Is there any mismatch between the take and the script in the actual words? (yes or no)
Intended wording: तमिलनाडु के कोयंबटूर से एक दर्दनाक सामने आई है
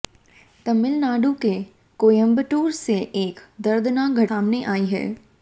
no